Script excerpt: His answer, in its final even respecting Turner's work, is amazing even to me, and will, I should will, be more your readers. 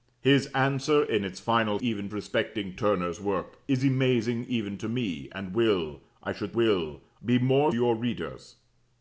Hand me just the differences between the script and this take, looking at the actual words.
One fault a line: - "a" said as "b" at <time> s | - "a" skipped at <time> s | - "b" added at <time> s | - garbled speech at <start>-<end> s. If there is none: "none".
none